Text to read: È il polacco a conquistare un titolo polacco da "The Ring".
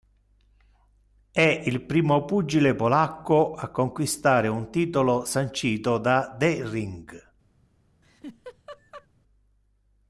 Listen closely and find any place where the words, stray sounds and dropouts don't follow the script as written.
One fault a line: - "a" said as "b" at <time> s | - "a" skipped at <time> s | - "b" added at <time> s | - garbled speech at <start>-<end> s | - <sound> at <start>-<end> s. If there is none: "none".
- "primo pugile" added at 1.8 s
- "polacco" said as "sancito" at 5.2 s
- laugh at 8.0-9.1 s